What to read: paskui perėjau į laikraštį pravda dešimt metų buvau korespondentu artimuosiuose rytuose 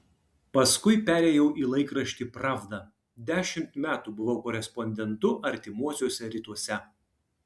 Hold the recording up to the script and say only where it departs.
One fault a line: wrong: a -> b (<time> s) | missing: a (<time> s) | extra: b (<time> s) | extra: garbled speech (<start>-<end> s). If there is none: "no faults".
no faults